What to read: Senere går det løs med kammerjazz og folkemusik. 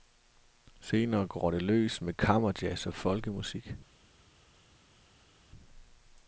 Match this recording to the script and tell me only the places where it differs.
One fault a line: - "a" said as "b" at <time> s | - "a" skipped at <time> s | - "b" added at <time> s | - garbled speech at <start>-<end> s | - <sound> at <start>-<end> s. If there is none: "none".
none